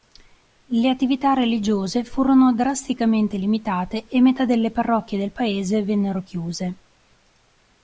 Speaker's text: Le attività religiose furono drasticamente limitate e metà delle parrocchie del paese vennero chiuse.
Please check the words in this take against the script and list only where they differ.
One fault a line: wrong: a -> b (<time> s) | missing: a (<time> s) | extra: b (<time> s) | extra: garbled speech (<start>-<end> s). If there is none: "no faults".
no faults